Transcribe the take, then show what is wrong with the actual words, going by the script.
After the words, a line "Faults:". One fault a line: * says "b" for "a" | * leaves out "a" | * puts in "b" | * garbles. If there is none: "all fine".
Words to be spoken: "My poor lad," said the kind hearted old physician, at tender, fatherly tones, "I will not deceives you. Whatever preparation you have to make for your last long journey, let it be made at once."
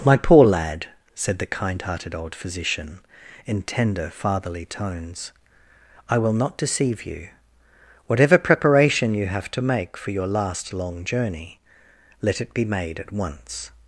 "My poor lad," said the kind hearted old physician, in tender, fatherly tones, "I will not deceive you. Whatever preparation you have to make for your last long journey, let it be made at once."
Faults:
* says "in" for "at"
* says "deceive" for "deceives"